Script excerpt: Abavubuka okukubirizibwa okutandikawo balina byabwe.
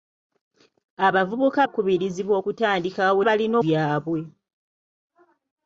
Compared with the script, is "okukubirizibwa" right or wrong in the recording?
right